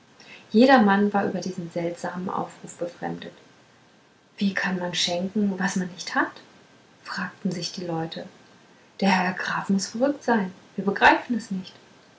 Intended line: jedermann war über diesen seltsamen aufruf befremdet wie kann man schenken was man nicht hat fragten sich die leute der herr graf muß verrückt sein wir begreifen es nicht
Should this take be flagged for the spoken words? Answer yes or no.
no